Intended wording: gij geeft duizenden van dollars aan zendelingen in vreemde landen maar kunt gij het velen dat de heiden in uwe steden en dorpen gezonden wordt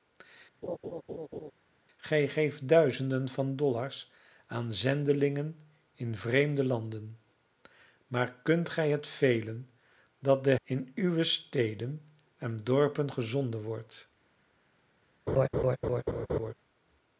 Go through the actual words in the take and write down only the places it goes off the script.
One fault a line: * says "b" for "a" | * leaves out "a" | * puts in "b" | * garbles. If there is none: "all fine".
* leaves out "heiden"